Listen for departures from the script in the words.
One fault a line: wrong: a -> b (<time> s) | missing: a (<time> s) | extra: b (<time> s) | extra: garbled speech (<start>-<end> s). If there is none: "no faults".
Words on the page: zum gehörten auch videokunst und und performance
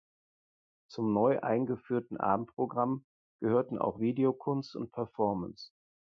extra: neu eingeführten abendprogramm (1.1 s)
missing: und (4.9 s)